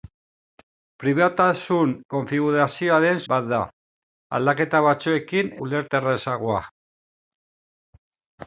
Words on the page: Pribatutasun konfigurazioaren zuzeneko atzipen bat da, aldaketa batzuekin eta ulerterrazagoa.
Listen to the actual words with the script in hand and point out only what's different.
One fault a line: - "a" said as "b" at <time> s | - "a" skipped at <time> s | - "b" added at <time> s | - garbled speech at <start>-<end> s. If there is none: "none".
- "zuzeneko atzipen" skipped at 3.2 s
- "eta" skipped at 5.5 s